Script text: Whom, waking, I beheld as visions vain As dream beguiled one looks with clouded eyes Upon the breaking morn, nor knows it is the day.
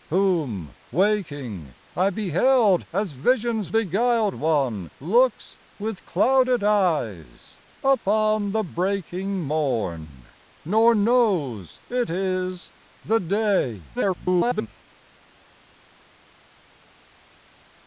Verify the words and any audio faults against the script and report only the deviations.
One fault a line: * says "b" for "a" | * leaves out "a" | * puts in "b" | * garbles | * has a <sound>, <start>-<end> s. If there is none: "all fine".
* leaves out "vain As dream"
* garbles